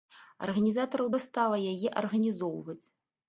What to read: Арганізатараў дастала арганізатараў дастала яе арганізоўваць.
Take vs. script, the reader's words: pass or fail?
fail